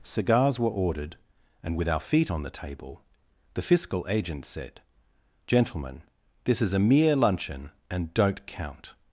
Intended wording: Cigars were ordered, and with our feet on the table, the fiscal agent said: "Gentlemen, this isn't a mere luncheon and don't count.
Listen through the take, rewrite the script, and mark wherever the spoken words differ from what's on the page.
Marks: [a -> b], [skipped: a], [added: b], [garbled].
Cigars were ordered, and with our feet on the table, the fiscal agent said: "Gentlemen, this [isn't -> is] a mere luncheon and don't count.